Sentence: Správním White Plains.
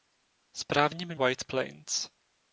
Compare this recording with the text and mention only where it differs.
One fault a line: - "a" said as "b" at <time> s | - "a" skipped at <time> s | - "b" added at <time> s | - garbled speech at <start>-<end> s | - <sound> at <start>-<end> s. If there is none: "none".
none